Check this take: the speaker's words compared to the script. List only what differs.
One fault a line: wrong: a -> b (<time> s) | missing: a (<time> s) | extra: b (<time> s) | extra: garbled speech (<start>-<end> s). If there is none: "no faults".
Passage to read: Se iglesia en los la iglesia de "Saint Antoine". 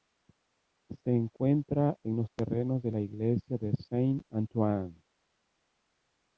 wrong: iglesia -> encuentra (1.1 s)
extra: terrenos de (2.4 s)